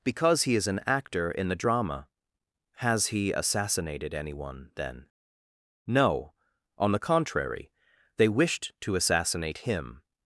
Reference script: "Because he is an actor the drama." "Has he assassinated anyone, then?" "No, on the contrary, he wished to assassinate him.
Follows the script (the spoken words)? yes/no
no